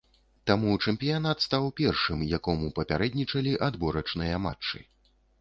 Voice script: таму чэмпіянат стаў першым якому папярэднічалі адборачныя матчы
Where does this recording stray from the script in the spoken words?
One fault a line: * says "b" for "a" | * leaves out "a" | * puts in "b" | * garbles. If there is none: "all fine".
all fine